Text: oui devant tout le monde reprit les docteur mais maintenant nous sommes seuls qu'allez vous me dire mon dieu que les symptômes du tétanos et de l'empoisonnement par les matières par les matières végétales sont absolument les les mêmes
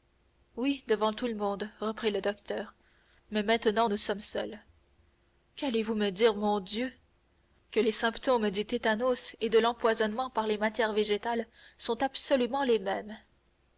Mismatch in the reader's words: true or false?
true